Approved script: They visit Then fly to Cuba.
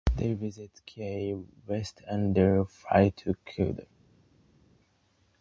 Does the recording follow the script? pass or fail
fail